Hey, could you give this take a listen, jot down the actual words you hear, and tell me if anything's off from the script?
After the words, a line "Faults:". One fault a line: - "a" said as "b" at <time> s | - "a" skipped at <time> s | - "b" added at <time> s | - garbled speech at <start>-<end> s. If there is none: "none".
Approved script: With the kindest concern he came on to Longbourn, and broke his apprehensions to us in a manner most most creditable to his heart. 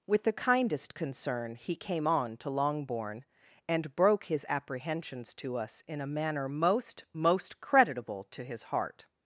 With the kindest concern he came on to Longbourn, and broke his apprehensions to us in a manner most most creditable to his heart.
Faults:
none